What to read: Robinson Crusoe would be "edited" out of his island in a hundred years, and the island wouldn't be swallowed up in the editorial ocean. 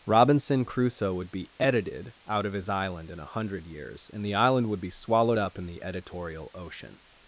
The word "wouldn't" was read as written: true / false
false